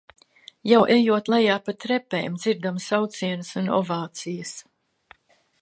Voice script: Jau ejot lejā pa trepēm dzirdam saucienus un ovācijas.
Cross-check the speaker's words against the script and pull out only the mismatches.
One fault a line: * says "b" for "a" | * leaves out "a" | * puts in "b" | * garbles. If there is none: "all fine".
all fine